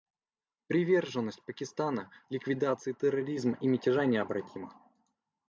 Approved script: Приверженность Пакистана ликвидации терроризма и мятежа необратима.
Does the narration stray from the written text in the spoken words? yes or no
no